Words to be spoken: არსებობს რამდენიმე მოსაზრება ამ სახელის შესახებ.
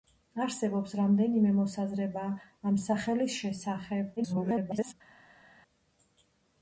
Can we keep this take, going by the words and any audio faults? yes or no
no